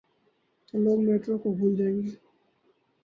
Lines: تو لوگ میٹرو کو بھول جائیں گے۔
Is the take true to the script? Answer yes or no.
yes